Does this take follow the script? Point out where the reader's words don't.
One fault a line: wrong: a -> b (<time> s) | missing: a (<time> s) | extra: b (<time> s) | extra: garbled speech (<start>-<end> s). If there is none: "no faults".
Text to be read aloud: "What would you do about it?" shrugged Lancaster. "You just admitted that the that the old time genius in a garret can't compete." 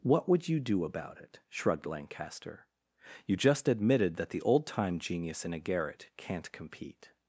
missing: that the (4.4 s)